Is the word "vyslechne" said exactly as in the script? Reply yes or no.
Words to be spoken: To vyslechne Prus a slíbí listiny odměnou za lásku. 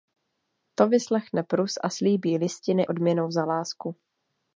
yes